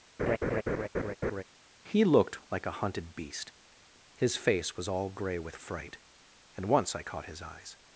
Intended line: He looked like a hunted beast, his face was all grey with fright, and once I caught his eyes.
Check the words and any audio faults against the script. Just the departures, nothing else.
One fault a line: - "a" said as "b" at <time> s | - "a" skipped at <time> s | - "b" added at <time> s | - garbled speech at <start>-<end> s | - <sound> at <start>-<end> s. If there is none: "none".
- laugh at 0.2-1.4 s